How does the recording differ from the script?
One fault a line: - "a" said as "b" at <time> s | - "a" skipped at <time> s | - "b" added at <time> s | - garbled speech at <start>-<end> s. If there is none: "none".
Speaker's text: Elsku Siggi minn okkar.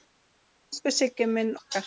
none